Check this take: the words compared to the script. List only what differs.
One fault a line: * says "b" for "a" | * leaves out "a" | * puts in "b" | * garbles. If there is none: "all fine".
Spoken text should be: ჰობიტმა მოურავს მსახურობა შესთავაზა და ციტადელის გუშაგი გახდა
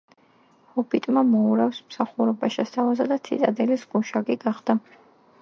all fine